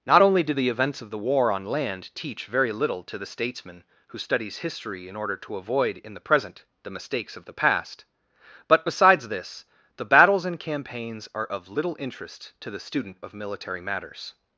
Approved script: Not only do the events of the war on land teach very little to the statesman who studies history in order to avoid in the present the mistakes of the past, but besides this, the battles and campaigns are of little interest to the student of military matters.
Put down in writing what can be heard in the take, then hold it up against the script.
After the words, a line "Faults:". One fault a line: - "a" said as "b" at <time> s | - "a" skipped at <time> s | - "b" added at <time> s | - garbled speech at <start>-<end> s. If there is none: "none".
Not only do the events of the war on land teach very little to the statesman who studies history in order to avoid in the present the mistakes of the past, but besides this, the battles and campaigns are of little interest to the student of military matters.
Faults:
none